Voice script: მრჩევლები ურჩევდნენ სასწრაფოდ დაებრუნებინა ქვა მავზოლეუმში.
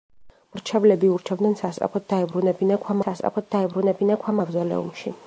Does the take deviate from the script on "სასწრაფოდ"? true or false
false